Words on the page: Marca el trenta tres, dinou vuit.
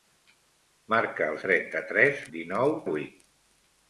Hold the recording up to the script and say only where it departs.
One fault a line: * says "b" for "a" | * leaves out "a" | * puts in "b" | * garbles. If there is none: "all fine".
all fine